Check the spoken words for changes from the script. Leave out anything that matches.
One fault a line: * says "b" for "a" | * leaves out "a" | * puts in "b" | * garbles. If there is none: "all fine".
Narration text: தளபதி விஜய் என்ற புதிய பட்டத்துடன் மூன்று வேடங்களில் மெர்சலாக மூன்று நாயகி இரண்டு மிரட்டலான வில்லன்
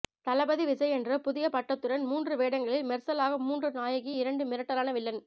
all fine